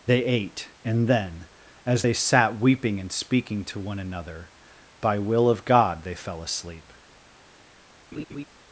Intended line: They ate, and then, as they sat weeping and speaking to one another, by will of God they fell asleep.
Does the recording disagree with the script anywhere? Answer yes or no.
no